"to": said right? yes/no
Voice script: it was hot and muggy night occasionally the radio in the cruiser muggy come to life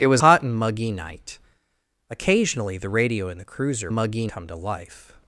yes